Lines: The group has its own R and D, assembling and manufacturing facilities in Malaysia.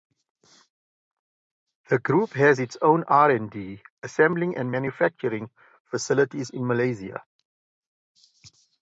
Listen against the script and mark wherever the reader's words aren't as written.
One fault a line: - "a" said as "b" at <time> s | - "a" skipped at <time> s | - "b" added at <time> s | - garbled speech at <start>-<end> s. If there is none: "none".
none